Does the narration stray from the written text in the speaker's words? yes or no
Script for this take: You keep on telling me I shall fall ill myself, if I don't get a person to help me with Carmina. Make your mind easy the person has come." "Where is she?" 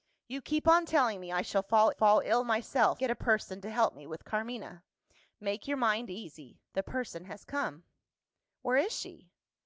yes